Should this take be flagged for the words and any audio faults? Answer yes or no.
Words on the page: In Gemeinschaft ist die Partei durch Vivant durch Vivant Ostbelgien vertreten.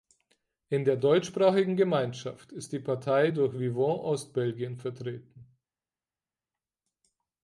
yes